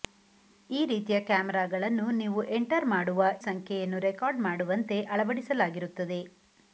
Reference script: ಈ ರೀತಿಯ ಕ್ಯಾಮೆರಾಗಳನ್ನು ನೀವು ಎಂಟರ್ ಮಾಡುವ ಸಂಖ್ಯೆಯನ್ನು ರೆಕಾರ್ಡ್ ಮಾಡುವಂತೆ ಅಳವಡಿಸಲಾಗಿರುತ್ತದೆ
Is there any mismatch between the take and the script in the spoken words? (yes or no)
no